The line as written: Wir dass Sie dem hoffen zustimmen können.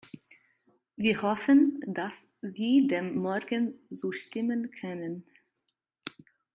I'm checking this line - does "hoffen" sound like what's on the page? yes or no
no